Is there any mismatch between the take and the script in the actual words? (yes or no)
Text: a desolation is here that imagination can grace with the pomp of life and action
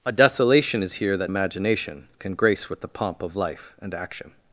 no